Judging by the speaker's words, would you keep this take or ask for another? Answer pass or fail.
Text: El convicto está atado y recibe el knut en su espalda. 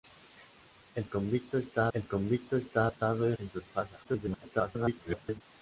fail